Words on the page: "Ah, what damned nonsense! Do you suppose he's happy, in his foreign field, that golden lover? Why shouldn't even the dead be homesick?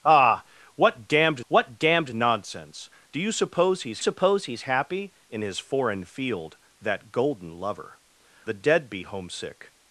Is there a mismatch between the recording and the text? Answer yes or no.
yes